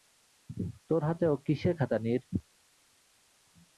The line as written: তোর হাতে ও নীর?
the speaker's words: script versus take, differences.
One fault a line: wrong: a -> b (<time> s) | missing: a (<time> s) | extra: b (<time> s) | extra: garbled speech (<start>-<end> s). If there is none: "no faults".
extra: কিসের খাতা (1.4 s)